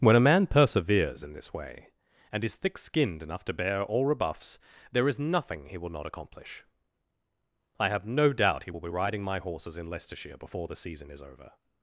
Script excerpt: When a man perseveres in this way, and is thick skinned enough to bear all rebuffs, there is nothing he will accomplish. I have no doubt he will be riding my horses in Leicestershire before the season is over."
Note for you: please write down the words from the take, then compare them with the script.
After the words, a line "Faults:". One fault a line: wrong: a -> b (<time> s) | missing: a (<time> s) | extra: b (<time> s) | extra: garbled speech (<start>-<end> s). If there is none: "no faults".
When a man perseveres in this way, and is thick skinned enough to bear all rebuffs, there is nothing he will not accomplish. I have no doubt he will be riding my horses in Leicestershire before the season is over."
Faults:
extra: not (5.9 s)